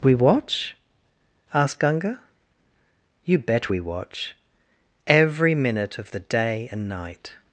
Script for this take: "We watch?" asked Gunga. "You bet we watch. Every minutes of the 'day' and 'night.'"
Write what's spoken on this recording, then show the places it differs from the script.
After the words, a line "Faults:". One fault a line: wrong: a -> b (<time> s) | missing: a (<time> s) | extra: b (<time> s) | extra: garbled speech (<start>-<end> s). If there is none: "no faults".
"We watch?" asked Gunga. "You bet we watch. Every minute of the 'day' and 'night.'"
Faults:
wrong: minutes -> minute (5.5 s)